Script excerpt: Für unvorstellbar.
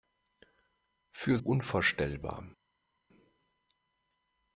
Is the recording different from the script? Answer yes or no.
no